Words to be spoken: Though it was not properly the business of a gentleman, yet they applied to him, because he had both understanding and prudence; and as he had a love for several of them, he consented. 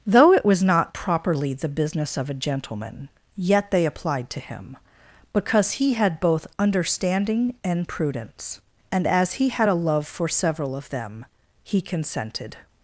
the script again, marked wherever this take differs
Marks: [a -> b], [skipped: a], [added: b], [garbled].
Though it was not properly the business of a gentleman, yet they applied to him, because he had both understanding and prudence; and as he had a love for several of them, he consented.